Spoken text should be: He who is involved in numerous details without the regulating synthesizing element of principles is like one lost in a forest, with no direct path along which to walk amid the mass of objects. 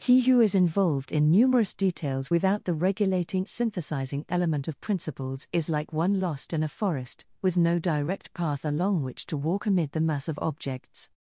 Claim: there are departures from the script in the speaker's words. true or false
false